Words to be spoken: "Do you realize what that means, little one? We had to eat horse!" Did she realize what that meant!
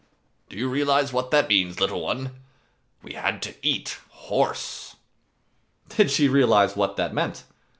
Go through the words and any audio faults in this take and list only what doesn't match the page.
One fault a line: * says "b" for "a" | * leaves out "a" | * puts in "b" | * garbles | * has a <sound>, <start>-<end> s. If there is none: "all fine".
all fine